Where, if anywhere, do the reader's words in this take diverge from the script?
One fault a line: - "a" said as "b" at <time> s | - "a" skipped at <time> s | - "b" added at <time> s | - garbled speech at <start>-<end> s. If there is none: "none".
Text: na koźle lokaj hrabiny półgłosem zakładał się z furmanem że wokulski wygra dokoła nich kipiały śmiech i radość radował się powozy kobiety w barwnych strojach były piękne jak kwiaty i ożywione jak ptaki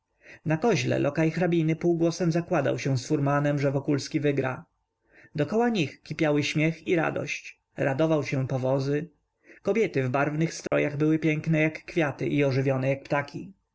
none